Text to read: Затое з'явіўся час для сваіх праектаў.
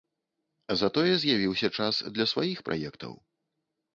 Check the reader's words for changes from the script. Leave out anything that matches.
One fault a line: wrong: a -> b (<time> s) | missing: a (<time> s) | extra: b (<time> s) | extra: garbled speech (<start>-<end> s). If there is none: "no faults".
no faults